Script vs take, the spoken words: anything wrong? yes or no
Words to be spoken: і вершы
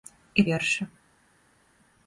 no